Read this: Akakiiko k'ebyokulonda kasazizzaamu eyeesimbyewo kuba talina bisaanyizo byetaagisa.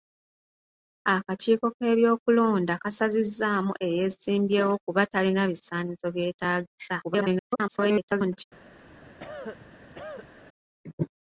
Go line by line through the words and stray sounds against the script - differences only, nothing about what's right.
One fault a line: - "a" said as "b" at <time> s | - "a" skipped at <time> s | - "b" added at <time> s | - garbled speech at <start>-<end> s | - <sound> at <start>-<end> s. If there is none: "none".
- garbled speech at 7.0-8.4 s
- cough at 8.8-10.4 s